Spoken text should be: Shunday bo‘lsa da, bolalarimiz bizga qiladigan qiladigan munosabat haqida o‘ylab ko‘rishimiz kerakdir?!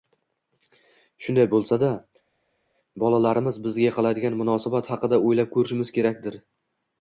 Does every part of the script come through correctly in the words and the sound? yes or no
no